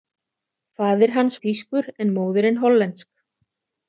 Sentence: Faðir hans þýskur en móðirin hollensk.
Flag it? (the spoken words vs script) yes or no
no